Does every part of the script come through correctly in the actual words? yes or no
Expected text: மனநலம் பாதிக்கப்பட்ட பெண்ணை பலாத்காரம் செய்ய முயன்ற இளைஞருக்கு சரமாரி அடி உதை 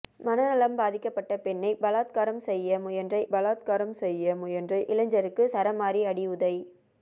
no